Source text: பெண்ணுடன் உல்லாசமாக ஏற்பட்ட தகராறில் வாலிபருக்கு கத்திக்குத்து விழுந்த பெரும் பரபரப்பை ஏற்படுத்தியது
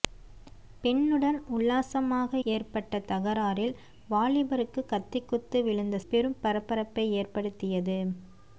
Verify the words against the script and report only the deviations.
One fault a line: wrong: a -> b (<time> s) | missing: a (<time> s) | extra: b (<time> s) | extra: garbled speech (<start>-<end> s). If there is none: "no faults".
no faults